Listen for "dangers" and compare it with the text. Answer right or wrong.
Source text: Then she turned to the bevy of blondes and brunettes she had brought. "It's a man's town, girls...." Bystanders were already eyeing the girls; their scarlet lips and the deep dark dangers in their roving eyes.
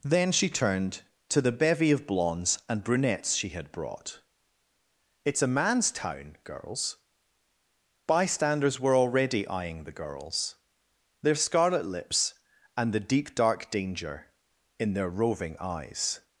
wrong